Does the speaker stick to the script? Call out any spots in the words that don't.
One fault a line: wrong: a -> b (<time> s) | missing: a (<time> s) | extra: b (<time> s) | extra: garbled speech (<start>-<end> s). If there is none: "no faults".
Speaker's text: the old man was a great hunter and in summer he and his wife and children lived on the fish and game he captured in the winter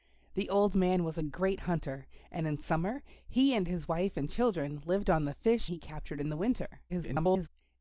missing: and game (5.7 s)
extra: garbled speech (6.9-7.5 s)